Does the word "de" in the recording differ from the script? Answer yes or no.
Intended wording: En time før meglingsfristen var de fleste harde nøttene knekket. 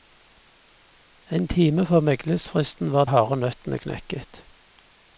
yes